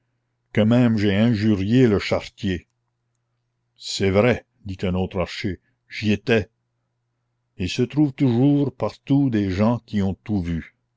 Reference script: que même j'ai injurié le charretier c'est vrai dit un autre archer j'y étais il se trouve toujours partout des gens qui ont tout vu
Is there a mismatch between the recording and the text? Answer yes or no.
no